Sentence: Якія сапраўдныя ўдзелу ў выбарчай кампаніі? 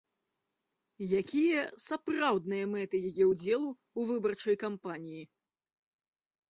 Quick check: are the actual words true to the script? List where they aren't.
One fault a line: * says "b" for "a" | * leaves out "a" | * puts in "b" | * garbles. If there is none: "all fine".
* puts in "мэты яе"